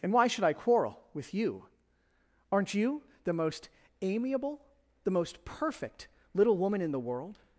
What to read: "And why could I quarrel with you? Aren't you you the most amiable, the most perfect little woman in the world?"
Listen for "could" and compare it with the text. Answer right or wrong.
wrong